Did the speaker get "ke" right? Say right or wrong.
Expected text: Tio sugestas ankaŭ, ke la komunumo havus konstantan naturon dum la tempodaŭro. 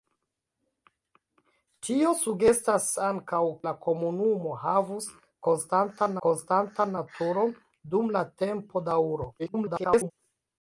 wrong